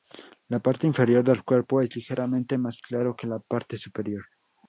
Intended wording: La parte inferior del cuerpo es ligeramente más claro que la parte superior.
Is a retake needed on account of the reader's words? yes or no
no